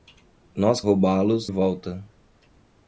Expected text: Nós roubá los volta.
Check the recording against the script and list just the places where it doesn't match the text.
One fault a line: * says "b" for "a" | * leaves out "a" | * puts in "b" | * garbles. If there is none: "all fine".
all fine